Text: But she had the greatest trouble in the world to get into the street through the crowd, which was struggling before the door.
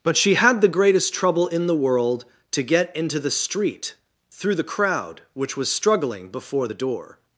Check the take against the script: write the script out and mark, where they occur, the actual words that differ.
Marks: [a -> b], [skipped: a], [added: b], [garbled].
But she had the greatest trouble in the world to get into the street through the crowd, which was struggling before the door.